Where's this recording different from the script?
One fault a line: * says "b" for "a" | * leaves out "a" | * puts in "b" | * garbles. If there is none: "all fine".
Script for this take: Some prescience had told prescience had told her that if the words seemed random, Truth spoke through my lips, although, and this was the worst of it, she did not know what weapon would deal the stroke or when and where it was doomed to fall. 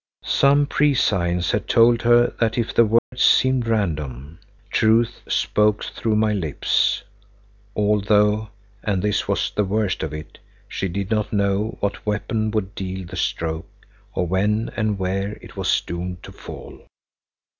* leaves out "prescience had told"